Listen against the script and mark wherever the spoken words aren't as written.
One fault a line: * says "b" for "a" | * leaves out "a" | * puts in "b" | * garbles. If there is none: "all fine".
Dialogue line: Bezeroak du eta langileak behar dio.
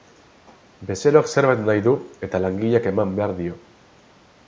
* puts in "zerbait nahi"
* puts in "eman"